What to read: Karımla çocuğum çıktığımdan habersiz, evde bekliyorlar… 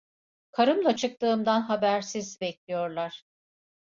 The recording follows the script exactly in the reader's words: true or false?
false